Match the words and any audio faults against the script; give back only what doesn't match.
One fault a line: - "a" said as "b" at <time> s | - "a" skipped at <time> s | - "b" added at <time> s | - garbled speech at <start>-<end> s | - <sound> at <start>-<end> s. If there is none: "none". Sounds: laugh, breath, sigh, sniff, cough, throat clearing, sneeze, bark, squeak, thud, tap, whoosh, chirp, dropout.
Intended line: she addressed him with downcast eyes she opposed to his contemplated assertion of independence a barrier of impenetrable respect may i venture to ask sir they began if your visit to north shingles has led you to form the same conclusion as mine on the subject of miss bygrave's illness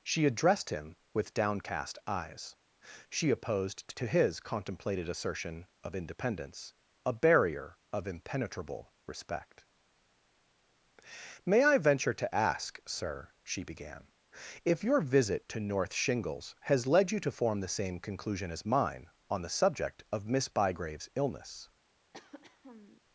- "they" said as "she" at 13.4 s
- throat clearing at 22.1-23.0 s